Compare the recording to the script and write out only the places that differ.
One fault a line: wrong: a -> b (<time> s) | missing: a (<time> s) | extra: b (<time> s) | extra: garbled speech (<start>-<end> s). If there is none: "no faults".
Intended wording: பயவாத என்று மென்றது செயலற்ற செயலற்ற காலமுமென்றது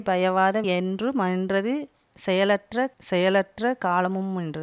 no faults